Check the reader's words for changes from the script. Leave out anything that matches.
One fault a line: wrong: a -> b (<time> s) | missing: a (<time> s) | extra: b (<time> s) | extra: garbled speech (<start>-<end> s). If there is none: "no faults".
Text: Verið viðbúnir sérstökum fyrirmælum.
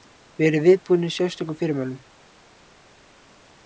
no faults